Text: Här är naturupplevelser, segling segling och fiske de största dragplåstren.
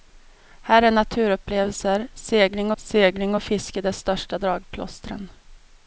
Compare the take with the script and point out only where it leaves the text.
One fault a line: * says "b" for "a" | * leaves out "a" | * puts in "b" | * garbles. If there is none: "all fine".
all fine